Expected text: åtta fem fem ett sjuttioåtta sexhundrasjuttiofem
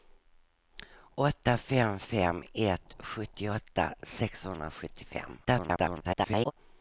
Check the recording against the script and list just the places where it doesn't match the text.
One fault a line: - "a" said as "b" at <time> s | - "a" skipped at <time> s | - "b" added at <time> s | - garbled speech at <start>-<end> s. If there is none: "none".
- garbled speech at 5.4-6.5 s